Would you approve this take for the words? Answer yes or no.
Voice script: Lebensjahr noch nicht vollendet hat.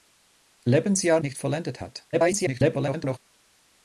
no